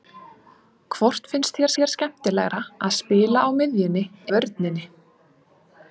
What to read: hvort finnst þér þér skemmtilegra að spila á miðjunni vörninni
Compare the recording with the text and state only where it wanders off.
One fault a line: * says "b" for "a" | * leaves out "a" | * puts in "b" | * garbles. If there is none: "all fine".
all fine